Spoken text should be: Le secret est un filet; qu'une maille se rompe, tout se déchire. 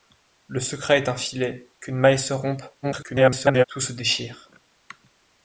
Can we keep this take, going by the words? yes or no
no